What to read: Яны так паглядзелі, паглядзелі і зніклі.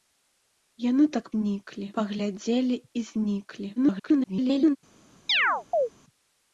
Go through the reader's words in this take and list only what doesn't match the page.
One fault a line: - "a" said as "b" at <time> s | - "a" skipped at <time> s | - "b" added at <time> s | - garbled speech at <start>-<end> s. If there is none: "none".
- "паглядзелі" said as "зніклі" at 1.3 s
- garbled speech at 3.8-4.8 s